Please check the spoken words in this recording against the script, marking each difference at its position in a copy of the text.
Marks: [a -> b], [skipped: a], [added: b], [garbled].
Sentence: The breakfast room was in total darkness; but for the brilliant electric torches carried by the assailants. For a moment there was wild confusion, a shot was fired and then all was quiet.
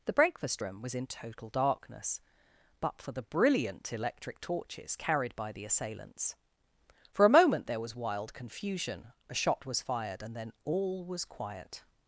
The breakfast room was in total darkness; but for the brilliant electric torches carried by the assailants. For a moment there was wild confusion, a shot was fired and then all was quiet.